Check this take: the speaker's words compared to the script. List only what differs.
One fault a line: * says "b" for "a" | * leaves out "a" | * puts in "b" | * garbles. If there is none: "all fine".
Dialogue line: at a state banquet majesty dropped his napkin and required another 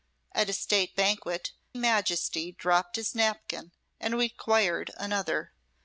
all fine